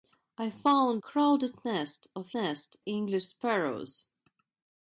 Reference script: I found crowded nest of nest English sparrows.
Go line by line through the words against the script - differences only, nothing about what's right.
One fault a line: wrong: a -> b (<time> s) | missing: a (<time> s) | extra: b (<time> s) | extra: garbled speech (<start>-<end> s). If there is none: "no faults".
no faults